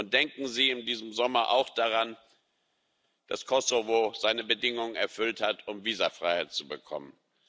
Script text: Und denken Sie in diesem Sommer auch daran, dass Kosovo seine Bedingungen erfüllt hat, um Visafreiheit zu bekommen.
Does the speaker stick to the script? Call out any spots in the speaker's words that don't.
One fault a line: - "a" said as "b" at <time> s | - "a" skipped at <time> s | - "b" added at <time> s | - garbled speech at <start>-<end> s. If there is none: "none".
none